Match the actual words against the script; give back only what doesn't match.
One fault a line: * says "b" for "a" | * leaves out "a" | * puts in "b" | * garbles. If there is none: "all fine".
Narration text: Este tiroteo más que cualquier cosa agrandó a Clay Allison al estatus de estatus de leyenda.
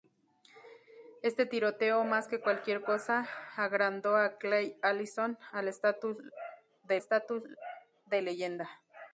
all fine